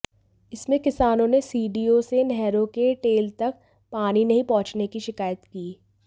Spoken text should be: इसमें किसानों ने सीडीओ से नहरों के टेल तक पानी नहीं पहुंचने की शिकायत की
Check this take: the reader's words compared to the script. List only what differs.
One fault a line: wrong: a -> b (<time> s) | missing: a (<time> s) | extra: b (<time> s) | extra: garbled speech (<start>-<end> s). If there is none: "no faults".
no faults